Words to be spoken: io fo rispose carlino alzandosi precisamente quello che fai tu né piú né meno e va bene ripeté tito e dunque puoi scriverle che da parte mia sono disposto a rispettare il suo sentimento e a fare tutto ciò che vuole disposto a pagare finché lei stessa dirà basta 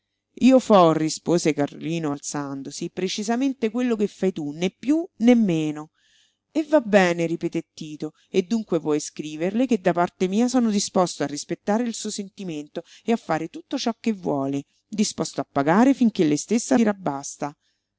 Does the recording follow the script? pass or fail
pass